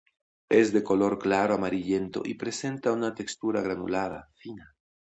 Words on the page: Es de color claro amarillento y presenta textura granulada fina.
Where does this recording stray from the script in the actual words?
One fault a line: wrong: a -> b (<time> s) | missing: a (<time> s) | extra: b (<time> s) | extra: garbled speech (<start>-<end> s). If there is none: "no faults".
extra: una (2.9 s)